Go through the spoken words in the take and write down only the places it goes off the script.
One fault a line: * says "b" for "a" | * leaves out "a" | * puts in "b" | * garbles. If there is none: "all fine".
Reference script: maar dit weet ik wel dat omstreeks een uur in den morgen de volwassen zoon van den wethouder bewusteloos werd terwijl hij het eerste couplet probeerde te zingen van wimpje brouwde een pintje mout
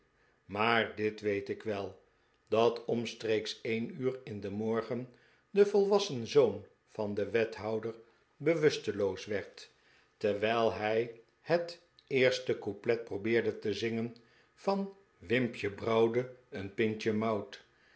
all fine